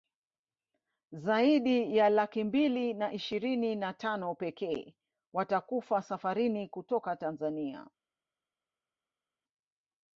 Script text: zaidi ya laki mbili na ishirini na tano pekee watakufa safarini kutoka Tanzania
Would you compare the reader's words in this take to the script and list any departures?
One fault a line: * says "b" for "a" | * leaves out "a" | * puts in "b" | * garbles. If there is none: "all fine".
all fine